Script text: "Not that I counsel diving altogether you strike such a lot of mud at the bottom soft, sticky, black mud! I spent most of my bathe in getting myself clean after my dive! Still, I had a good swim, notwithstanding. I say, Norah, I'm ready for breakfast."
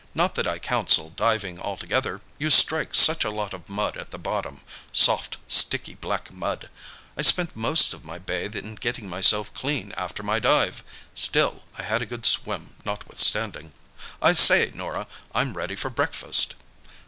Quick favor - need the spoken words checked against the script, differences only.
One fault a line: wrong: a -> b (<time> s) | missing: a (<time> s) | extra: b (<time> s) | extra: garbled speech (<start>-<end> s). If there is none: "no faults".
no faults